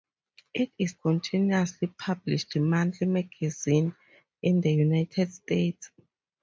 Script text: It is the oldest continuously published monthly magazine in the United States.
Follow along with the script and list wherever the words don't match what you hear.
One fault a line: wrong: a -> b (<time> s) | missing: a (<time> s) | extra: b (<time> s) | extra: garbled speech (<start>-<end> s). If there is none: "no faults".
missing: the oldest (1.0 s)